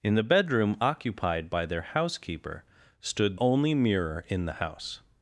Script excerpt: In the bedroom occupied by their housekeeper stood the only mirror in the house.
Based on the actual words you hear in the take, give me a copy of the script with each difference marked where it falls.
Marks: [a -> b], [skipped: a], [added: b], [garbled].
In the bedroom occupied by their housekeeper stood [skipped: the] only mirror in the house.